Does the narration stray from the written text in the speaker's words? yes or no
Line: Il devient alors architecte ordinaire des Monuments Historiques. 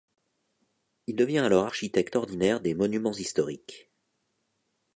no